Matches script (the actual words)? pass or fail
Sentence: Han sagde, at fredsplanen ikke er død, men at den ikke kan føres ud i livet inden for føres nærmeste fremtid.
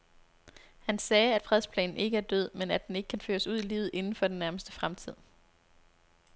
fail